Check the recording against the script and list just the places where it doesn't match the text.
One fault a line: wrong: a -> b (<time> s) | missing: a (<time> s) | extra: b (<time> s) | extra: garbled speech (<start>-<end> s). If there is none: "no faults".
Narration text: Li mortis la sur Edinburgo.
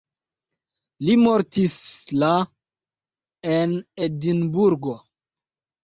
wrong: sur -> en (3.6 s)